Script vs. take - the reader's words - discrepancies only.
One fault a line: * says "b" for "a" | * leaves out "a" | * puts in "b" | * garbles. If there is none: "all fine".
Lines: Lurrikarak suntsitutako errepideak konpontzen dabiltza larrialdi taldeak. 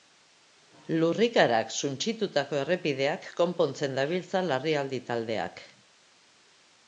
all fine